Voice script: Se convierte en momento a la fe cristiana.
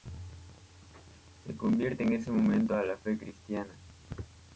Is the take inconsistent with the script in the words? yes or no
yes